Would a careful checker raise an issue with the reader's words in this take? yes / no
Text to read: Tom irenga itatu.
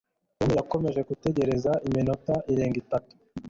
yes